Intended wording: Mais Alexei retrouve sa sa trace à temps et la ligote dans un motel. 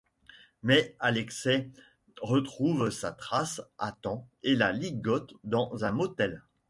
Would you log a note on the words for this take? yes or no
yes